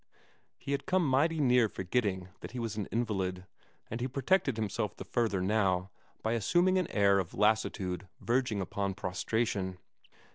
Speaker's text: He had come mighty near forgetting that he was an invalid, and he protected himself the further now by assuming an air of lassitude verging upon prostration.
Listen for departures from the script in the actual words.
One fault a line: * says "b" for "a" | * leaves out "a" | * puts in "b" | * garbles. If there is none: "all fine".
all fine